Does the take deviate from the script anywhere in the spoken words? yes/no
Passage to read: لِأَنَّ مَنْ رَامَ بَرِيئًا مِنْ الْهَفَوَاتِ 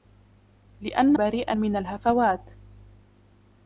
yes